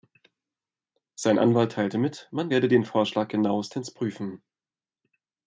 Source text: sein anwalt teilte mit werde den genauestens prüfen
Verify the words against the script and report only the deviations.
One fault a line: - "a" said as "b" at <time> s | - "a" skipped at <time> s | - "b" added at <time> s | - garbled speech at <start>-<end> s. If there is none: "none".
- "man" added at 2.3 s
- "vorschlag" added at 2.9 s